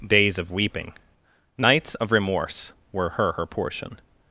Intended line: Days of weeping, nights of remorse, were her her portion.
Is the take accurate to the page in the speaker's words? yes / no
yes